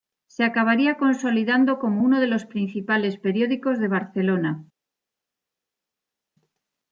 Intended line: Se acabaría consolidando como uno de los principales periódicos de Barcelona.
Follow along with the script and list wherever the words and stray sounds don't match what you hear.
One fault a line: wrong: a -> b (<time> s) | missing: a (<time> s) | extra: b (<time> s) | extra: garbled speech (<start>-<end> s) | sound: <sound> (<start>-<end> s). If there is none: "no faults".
no faults